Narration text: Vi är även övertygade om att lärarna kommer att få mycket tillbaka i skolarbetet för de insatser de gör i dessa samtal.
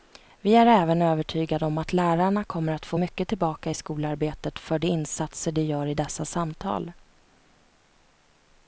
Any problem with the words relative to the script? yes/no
no